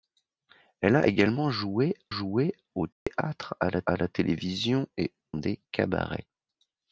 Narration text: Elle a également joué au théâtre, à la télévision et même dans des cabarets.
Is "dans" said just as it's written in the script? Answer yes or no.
no